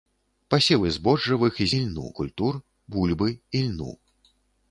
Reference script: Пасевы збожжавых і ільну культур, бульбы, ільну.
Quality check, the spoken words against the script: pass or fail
pass